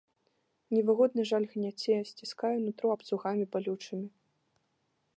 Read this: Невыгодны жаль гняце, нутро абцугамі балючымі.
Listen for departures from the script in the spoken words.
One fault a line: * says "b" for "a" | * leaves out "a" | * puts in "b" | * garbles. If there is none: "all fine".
* puts in "сціскае"